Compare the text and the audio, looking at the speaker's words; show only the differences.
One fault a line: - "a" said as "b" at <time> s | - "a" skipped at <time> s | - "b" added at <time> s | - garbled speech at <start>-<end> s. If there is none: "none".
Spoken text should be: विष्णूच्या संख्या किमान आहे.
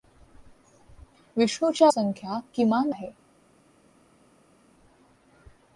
none